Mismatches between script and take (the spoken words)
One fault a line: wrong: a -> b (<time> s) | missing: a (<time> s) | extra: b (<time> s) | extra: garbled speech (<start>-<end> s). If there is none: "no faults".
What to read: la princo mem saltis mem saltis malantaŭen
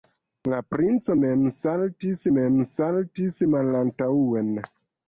no faults